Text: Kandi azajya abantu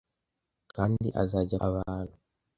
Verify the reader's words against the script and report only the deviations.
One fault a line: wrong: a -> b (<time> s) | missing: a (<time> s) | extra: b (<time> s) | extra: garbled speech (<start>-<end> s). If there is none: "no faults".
no faults